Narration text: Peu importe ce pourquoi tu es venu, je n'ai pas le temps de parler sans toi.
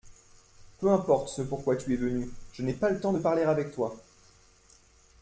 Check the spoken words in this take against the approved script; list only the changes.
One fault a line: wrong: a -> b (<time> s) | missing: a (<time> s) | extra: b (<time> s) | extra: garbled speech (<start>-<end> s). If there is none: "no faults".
wrong: sans -> avec (3.4 s)